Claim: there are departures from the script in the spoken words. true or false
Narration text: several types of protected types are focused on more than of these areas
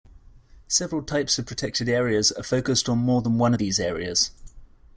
true